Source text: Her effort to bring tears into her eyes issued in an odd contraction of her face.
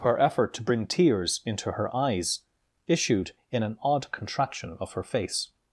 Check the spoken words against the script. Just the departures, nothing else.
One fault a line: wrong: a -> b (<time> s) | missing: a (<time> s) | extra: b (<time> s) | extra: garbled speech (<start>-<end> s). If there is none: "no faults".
no faults